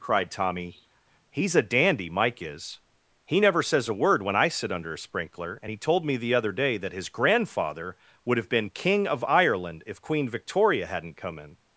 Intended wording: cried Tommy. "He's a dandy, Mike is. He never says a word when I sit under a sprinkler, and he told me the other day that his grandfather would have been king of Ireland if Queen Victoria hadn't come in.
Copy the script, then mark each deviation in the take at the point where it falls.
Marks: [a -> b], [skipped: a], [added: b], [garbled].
cried Tommy. "He's a dandy, Mike is. He never says a word when I sit under a sprinkler, and he told me the other day that his grandfather would have been king of Ireland if Queen Victoria hadn't come in.